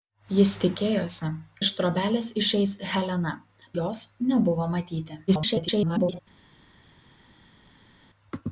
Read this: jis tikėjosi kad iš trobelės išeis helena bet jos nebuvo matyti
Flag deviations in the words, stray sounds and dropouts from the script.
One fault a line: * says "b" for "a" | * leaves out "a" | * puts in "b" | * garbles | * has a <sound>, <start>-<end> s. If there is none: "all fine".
* leaves out "kad"
* leaves out "bet"
* garbles